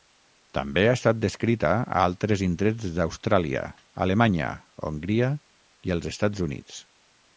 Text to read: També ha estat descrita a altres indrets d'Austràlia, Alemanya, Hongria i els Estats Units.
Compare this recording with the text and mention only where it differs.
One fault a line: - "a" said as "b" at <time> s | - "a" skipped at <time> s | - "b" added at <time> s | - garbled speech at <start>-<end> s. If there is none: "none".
none